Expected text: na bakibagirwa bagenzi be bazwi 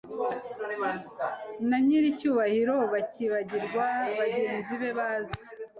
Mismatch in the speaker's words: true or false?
true